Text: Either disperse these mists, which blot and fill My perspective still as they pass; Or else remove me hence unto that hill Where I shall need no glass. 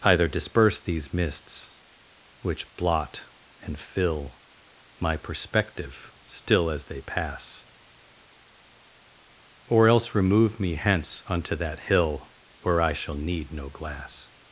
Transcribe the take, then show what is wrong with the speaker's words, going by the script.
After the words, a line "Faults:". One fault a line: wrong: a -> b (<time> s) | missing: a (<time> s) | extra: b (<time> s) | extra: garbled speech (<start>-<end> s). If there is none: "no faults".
Either disperse these mists, which blot and fill My perspective still as they pass; Or else remove me hence unto that hill Where I shall need no glass.
Faults:
no faults